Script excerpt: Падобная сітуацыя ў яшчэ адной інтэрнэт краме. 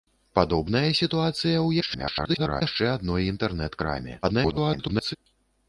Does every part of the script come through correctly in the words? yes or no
no